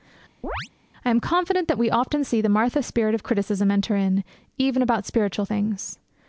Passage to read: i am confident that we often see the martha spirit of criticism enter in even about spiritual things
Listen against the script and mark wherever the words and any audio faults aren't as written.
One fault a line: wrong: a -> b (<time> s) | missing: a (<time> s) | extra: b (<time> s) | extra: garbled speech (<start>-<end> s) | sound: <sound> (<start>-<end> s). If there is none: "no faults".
sound: chirp (0.4-0.7 s)